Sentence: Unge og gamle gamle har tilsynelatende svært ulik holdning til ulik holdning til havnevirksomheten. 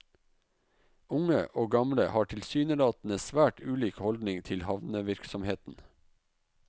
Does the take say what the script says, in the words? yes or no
no